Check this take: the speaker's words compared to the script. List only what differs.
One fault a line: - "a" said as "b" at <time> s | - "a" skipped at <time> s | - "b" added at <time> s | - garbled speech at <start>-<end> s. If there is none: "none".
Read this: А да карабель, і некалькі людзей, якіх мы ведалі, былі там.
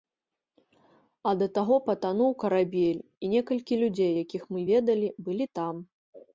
- "таго патануў" added at 1.6 s